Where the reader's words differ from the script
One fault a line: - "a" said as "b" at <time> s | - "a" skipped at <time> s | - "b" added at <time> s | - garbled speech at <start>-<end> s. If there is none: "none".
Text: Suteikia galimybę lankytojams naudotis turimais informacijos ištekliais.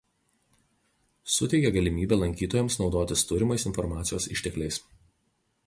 none